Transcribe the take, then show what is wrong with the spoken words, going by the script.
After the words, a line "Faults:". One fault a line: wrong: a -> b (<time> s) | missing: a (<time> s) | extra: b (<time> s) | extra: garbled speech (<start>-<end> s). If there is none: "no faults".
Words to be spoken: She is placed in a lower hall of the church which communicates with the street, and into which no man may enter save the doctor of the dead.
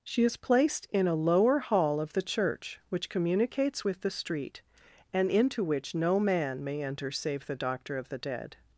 She is placed in a lower hall of the church which communicates with the street, and into which no man may enter save the doctor of the dead.
Faults:
no faults